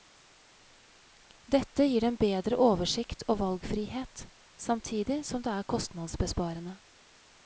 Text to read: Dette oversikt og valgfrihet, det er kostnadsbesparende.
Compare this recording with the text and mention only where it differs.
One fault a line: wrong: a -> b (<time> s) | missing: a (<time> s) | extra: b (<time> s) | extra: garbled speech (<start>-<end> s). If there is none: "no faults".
extra: gir dem bedre (1.9 s)
extra: samtidig som (4.7 s)